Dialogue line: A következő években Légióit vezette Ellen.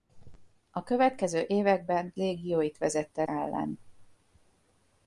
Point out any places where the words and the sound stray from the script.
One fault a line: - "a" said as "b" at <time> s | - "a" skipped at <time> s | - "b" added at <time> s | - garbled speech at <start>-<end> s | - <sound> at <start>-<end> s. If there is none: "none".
none